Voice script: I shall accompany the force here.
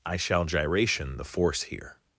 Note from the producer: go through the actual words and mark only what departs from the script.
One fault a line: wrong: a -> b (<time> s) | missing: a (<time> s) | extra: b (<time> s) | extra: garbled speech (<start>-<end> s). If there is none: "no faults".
wrong: accompany -> gyration (0.5 s)